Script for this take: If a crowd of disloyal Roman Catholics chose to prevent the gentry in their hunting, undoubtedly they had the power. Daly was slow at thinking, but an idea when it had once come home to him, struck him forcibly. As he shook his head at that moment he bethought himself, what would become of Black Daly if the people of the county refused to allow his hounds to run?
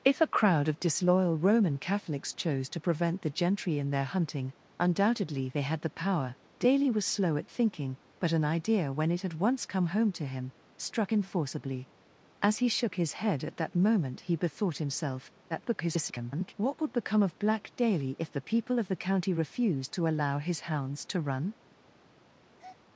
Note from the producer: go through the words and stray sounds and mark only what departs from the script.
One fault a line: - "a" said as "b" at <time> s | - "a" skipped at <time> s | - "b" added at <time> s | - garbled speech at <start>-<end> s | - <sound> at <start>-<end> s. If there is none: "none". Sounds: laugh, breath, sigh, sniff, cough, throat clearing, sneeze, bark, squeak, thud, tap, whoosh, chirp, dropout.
- garbled speech at 15.5-16.5 s
- breath at 22.6-22.8 s